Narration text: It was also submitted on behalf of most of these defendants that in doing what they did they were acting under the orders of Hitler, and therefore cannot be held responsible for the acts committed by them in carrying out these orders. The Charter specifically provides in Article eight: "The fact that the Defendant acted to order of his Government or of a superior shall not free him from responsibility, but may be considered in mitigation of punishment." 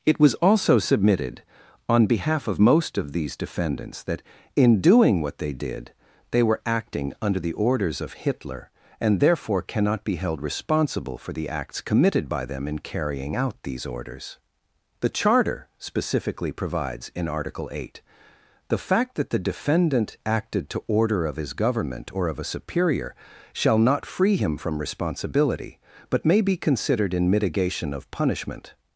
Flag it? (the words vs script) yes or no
no